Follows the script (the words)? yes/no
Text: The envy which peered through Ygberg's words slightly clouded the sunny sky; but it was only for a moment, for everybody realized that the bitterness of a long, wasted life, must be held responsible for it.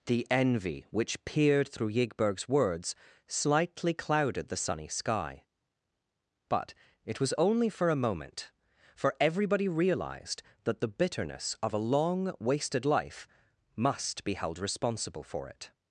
yes